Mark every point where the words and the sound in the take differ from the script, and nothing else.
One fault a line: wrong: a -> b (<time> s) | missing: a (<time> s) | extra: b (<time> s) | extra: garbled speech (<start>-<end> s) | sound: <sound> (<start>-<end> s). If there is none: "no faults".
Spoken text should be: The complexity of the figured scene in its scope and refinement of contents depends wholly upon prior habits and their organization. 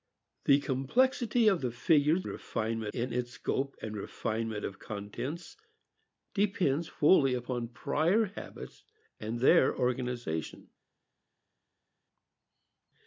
wrong: scene -> refinement (2.3 s)